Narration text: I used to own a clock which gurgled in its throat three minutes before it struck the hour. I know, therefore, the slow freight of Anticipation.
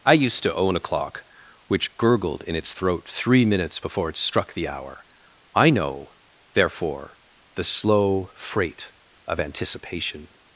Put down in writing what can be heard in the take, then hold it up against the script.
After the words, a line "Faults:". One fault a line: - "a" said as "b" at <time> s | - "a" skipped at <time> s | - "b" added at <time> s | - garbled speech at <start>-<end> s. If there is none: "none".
I used to own a clock which gurgled in its throat three minutes before it struck the hour. I know, therefore, the slow freight of Anticipation.
Faults:
none